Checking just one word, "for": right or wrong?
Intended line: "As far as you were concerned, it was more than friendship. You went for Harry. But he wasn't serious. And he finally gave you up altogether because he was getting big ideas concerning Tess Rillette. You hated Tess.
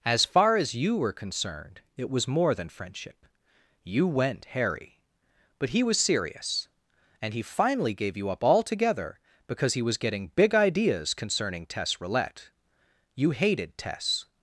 wrong